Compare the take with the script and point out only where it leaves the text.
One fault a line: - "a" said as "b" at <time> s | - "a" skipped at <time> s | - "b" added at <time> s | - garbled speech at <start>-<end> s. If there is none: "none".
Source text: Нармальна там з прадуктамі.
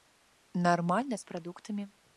- "там" skipped at 1.2 s